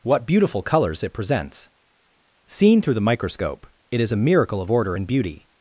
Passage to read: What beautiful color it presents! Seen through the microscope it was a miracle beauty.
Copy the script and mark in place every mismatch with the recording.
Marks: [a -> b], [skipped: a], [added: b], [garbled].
What beautiful [color -> colors] it presents! Seen through the microscope it [was -> is] a miracle [added: of order and] beauty.